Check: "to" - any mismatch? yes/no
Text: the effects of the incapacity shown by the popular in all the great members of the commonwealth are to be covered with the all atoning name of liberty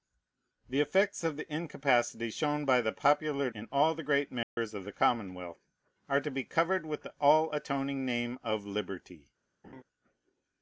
no